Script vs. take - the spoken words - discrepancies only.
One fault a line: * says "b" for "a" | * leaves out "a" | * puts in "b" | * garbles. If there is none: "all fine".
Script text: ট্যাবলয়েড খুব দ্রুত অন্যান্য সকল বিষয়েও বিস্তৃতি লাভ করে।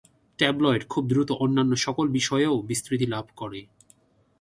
all fine